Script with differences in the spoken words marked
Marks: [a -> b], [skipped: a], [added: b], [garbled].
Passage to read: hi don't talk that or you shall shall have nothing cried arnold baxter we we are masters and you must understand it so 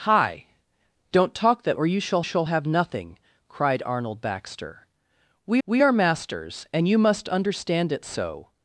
hi don't talk that or you shall shall have nothing cried arnold baxter we we are masters and you must understand it so